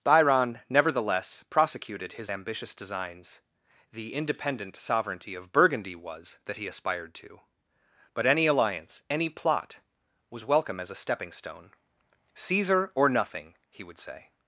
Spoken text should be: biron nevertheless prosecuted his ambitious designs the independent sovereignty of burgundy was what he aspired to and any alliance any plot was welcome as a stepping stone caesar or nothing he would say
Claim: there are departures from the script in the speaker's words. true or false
true